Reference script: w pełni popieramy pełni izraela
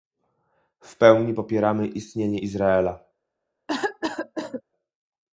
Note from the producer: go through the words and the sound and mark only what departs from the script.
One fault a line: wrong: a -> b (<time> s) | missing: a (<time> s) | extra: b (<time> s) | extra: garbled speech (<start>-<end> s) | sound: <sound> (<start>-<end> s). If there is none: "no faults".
wrong: pełni -> istnienie (1.9 s)
sound: cough (3.7-4.6 s)